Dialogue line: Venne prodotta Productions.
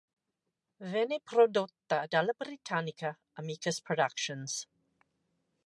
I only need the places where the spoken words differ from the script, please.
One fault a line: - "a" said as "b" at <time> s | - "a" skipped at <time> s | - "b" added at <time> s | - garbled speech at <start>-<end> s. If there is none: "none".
- "dalla britannica Amicus" added at 2.1 s